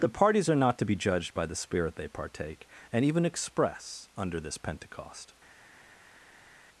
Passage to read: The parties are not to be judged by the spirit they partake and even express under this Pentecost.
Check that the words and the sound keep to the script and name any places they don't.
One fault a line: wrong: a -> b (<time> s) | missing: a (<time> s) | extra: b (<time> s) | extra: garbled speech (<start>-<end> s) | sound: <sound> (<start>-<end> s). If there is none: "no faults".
no faults